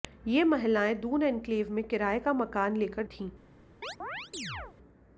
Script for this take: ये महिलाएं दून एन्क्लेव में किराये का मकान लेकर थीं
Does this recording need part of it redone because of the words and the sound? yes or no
yes